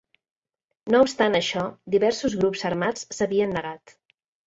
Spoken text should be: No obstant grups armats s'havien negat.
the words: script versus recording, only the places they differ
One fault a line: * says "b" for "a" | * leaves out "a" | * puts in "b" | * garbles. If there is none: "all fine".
* puts in "això diversos"